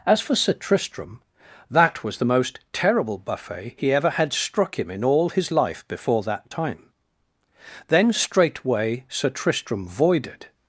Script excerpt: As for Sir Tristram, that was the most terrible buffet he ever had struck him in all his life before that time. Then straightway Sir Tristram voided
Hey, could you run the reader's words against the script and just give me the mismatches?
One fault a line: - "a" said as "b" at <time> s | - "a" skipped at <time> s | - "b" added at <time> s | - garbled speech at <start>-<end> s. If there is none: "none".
none